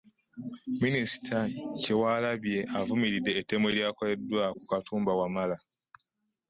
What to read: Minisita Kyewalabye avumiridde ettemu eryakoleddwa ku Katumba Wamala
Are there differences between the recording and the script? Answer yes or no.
no